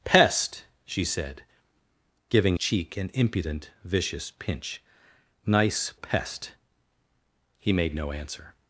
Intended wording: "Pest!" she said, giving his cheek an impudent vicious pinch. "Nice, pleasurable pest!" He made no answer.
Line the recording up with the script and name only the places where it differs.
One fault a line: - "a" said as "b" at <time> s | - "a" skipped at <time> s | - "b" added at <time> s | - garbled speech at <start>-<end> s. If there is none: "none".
- "his" skipped at 2.6 s
- "pleasurable" skipped at 5.9 s